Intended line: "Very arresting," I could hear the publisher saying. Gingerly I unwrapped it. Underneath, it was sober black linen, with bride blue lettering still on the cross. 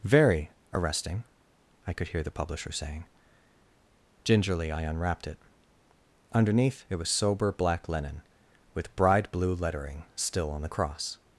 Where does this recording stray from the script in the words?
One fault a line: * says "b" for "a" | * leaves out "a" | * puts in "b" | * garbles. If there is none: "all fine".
all fine